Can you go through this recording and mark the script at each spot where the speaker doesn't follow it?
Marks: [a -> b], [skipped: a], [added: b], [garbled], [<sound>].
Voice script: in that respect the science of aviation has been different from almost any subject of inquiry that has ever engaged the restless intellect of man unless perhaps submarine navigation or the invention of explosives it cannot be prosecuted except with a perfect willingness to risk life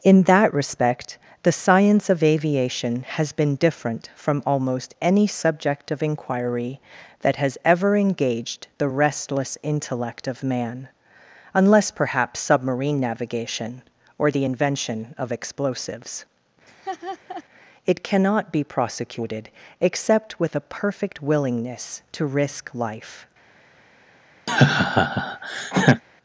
in that respect the science of aviation has been different from almost any subject of inquiry that has ever engaged the restless intellect of man unless perhaps submarine navigation or the invention of explosives [laugh] it cannot be prosecuted except with a perfect willingness to risk life [laugh]